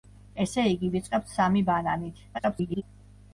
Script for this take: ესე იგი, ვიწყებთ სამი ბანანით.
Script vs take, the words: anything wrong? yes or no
yes